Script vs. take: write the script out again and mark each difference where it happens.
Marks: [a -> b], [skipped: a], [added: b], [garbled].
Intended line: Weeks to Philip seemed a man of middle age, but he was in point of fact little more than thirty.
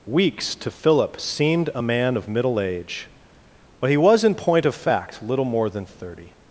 Weeks to Philip seemed a man of middle age, but he was in point of fact little more than thirty.